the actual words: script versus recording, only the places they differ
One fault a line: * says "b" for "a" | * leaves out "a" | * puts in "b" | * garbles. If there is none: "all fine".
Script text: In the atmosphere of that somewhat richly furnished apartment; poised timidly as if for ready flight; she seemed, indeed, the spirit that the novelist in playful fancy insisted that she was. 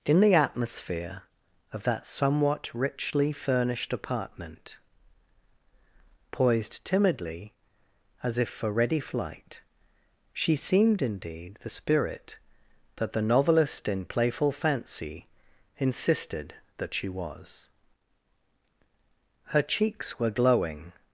* puts in "Her cheeks were glowing"